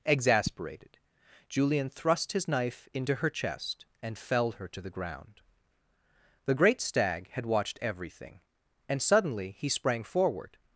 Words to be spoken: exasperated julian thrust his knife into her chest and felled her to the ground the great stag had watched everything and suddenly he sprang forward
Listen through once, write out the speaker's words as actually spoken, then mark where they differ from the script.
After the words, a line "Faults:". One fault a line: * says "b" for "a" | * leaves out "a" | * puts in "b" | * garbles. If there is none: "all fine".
exasperated julian thrust his knife into her chest and felled her to the ground the great stag had watched everything and suddenly he sprang forward
Faults:
all fine